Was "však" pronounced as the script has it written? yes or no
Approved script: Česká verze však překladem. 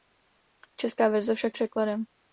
yes